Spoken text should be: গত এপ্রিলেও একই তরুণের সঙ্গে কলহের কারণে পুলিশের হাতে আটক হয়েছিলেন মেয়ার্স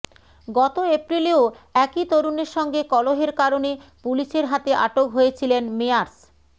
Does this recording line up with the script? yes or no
yes